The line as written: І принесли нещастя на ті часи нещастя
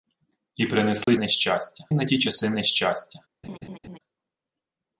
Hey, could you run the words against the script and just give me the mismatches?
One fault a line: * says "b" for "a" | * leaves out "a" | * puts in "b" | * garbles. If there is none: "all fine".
all fine